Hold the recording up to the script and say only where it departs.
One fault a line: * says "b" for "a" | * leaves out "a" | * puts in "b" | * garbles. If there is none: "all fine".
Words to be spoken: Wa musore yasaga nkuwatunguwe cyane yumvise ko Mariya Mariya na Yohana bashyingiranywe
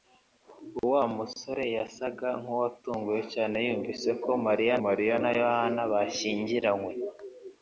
all fine